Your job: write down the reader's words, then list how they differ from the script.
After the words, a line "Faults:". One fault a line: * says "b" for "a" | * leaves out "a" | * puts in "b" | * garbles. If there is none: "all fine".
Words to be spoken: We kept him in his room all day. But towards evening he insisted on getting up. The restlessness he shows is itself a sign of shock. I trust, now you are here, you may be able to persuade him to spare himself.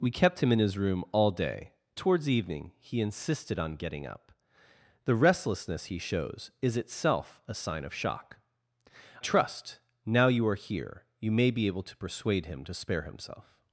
We kept him in his room all day. Towards evening he insisted on getting up. The restlessness he shows is itself a sign of shock. trust, now you are here, you may be able to persuade him to spare himself.
Faults:
* leaves out "But"
* leaves out "I"